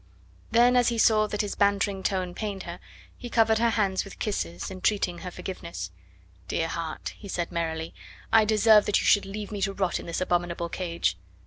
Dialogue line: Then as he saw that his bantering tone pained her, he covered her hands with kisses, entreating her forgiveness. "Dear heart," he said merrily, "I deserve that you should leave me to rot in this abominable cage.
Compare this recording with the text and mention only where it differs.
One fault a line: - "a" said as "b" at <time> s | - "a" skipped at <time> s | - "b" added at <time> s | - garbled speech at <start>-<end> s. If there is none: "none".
none